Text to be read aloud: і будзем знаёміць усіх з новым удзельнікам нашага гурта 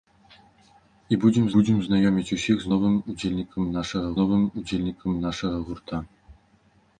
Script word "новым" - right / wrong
right